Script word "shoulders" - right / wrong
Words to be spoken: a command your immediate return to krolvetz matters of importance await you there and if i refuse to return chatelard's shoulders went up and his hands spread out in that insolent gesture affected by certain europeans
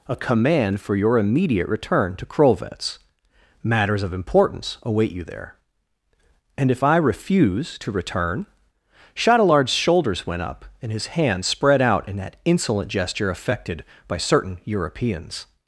right